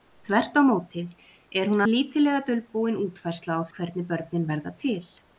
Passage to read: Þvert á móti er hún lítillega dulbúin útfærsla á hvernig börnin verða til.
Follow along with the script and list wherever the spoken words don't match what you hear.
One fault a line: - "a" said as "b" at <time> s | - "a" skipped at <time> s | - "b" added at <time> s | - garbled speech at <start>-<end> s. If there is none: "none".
none